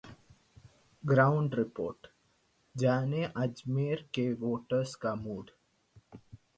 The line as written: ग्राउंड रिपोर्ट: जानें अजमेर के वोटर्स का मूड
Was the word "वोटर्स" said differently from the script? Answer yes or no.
no